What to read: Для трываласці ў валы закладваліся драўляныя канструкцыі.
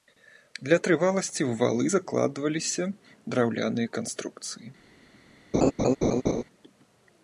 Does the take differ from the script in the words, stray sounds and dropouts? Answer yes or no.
yes